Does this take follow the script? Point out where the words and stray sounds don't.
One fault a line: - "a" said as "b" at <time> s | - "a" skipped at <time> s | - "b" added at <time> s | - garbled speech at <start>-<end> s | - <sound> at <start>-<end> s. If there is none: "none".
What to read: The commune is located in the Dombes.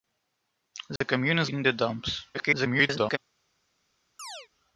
- dropout at 1.0-1.0 s
- "located" skipped at 1.5 s
- garbled speech at 2.3-3.2 s
- chirp at 4.2-4.5 s